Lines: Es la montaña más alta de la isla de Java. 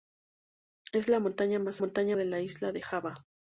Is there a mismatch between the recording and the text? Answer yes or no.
yes